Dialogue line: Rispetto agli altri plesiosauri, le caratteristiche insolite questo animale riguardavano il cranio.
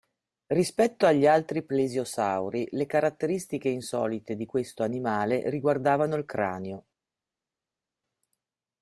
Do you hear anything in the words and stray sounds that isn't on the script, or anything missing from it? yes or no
yes